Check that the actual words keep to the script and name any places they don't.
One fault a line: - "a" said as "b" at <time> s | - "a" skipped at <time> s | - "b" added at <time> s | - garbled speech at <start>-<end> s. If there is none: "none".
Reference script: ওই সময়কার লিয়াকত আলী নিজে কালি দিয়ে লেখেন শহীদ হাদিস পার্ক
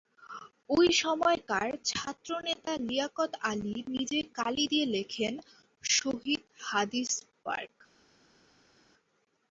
- "ছাত্রনেতা" added at 1.9 s